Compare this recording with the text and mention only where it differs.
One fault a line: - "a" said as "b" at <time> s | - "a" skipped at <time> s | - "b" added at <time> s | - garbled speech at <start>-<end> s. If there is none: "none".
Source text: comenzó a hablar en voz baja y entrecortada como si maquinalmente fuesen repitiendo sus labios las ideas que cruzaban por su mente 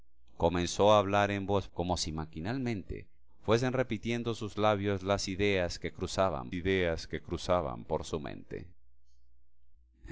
- "baja y entrecortada" skipped at 1.7 s
- "ideas que cruzaban" added at 6.5 s